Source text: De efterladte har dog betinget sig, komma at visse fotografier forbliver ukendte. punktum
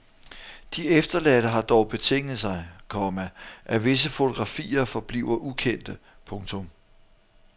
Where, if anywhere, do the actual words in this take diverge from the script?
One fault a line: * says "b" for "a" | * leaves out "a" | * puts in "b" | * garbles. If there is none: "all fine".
all fine